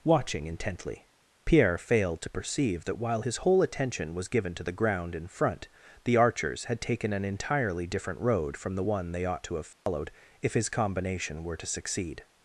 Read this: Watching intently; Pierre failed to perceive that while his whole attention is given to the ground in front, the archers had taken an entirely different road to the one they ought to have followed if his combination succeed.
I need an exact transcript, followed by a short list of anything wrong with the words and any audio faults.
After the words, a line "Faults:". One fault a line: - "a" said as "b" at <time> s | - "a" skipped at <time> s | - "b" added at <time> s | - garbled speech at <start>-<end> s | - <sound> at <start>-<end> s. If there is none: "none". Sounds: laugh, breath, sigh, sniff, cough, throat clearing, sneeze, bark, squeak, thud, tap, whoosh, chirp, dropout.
Watching intently; Pierre failed to perceive that while his whole attention was given to the ground in front, the archers had taken an entirely different road from the one they ought to have followed if his combination were to succeed.
Faults:
- "is" said as "was" at 4.1 s
- "to" said as "from" at 8.5 s
- dropout at 9.7-9.9 s
- "were to" added at 11.4 s